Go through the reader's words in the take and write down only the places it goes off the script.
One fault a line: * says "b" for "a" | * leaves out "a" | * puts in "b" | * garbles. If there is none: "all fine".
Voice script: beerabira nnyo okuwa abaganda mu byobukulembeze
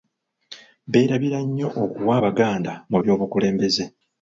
all fine